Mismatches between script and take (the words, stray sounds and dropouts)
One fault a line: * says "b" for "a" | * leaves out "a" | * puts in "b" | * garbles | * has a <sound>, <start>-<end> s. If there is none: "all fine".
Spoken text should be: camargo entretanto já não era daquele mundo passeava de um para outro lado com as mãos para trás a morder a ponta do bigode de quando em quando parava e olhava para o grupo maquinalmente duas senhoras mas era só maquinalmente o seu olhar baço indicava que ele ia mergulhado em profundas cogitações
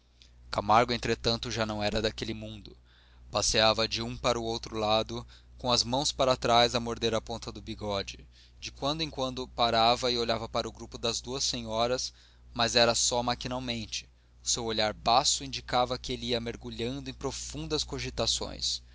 * says "das" for "maquinalmente"